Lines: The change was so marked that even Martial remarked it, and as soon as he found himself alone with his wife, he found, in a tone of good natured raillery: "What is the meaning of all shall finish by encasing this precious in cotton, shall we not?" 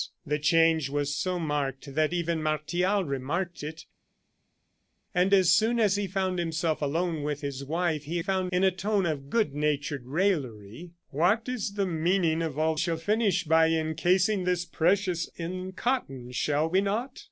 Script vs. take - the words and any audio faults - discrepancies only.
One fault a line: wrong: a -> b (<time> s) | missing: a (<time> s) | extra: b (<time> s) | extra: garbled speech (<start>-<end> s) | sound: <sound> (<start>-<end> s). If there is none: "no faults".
no faults